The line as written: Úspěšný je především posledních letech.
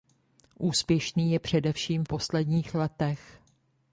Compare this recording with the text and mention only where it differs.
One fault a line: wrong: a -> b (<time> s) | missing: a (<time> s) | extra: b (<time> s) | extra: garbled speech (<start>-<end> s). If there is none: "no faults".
no faults